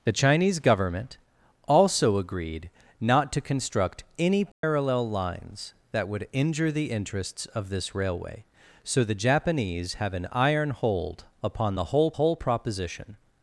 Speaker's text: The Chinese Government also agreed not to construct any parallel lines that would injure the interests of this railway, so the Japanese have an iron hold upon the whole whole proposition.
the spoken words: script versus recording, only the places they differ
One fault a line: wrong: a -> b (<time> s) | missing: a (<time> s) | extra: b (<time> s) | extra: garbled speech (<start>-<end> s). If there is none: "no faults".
no faults